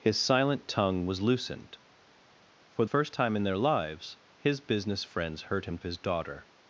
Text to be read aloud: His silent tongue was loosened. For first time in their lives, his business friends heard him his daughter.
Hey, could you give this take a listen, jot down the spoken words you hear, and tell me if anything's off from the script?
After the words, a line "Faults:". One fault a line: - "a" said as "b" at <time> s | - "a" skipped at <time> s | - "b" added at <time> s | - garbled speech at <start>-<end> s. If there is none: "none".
His silent tongue was loosened. For first time in their lives, his business friends heard him his daughter.
Faults:
none